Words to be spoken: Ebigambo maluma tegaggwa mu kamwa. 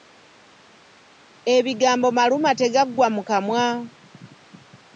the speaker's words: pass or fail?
pass